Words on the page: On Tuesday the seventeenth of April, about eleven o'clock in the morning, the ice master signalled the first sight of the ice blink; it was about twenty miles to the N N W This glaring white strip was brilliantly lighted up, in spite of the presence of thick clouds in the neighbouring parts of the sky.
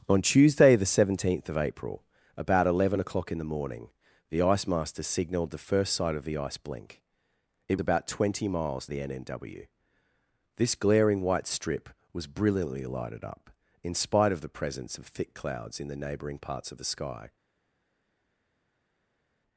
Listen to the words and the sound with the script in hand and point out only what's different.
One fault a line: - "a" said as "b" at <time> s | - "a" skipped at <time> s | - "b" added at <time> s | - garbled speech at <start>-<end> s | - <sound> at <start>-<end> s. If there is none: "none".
- "was" skipped at 7.8 s
- "to" skipped at 8.9 s